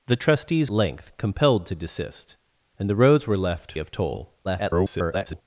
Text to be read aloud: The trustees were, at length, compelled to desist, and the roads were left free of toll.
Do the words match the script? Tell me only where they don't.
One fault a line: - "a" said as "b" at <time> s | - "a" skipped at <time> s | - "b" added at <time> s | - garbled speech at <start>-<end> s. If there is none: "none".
- "were at" skipped at 0.7 s
- "free" skipped at 3.7 s
- garbled speech at 4.4-5.4 s